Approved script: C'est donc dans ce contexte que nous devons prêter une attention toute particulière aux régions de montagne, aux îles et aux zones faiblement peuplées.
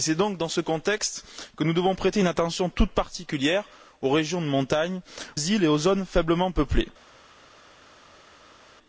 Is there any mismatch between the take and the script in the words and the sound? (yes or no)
yes